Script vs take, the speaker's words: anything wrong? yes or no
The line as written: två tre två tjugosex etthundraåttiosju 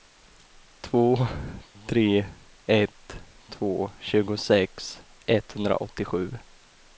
yes